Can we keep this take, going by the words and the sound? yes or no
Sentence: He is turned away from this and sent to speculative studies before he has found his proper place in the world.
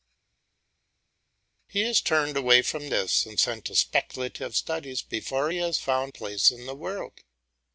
no